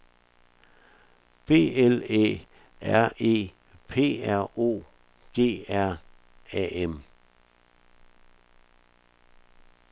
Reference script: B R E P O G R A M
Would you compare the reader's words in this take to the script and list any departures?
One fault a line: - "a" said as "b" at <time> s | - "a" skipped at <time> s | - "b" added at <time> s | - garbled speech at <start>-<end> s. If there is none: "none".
- "L Æ" added at 1.8 s
- "R" added at 4.3 s